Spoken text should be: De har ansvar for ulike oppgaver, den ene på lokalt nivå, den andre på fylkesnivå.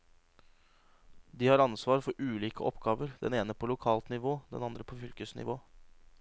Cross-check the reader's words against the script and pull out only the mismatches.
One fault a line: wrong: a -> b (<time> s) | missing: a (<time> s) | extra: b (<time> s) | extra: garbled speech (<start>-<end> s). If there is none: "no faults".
no faults